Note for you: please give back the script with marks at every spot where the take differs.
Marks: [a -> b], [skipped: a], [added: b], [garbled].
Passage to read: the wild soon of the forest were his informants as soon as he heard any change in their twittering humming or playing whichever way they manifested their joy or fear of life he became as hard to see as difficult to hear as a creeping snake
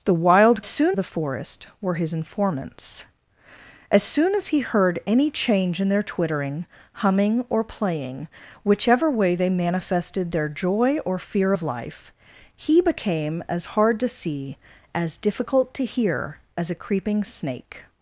the wild soon of the forest were his informants as soon as he heard any change in their twittering humming or playing whichever way they manifested their joy or fear of life he became as hard to see as difficult to hear as a creeping snake